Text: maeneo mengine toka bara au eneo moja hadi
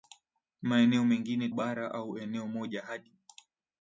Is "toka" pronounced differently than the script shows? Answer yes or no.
yes